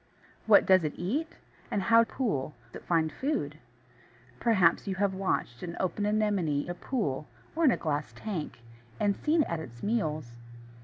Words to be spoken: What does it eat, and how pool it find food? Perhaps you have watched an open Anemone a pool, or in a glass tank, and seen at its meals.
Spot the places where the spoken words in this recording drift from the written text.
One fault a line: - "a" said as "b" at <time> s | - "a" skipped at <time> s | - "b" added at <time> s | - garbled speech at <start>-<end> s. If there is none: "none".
none